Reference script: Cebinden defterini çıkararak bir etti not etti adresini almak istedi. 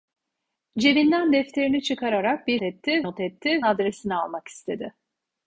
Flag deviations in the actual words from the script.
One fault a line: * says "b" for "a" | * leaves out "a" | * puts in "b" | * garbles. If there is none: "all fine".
all fine